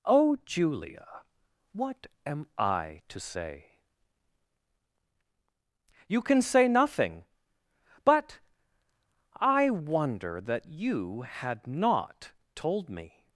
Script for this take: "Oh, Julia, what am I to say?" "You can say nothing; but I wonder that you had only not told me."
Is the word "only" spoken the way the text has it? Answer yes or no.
no